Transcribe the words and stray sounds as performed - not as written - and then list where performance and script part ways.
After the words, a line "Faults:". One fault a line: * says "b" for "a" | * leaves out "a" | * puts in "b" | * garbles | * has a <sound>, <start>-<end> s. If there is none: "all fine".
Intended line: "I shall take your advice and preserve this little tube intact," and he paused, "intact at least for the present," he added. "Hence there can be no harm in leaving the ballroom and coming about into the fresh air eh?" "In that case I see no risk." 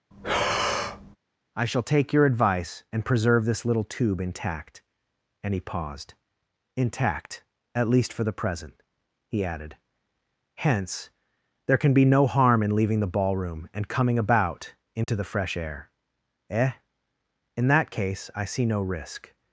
"I shall take your advice and preserve this little tube intact," and he paused, "intact at least for the present," he added. "Hence there can be no harm in leaving the ballroom and coming about into the fresh air eh?" "In that case I see no risk."
Faults:
* has a breath, 0.1-1.2 s
* has a dropout, 15.0-15.1 s